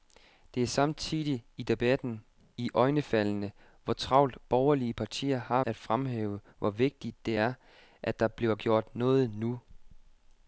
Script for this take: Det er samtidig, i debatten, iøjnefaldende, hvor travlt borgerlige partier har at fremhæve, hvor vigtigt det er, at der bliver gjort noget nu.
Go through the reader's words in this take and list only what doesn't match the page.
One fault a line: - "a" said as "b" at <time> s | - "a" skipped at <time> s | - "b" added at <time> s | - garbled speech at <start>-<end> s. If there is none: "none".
none